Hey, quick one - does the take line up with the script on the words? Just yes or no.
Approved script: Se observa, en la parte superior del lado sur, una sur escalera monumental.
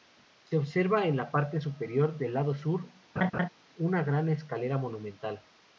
no